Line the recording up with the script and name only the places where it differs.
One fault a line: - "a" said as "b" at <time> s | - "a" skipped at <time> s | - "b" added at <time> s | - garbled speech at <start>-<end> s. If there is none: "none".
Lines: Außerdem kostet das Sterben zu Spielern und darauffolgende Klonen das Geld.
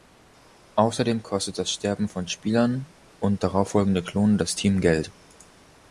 - "zu" said as "von" at 2.1 s
- "Team" added at 4.5 s